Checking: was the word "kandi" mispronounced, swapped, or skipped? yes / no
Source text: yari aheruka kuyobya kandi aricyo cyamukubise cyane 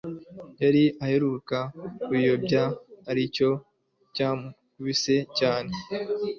yes